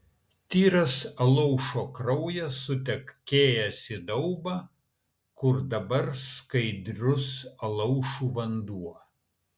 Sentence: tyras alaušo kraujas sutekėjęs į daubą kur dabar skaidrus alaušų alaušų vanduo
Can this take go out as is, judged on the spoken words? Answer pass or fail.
fail